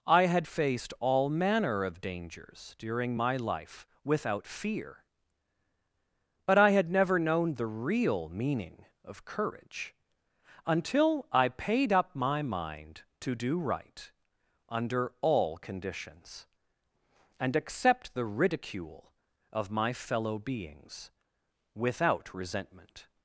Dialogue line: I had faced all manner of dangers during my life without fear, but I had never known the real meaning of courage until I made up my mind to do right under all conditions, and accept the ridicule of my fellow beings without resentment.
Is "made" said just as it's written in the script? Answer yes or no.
no